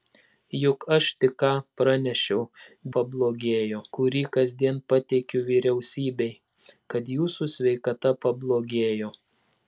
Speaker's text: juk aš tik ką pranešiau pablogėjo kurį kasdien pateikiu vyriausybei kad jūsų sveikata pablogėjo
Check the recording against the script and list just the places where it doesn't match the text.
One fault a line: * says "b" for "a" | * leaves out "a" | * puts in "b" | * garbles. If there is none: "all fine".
all fine